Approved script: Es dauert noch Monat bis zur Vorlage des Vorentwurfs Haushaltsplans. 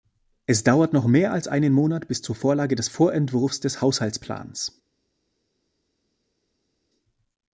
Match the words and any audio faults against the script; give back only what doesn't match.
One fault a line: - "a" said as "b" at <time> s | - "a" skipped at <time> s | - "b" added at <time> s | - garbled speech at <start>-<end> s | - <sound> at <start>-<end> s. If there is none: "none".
- "mehr als einen" added at 1.1 s
- "des" added at 3.6 s